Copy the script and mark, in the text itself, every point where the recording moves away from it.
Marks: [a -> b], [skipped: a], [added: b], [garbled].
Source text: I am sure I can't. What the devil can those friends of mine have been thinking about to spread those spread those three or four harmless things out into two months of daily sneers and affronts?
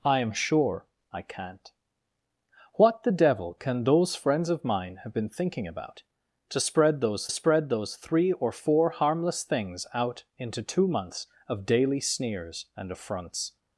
I am sure I can't. What the devil can those friends of mine have been thinking about to spread those spread those three or four harmless things out into two months of daily sneers and affronts?